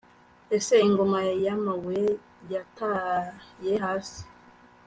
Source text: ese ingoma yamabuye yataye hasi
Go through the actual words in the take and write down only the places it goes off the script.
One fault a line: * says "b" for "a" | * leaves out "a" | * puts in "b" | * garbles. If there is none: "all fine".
all fine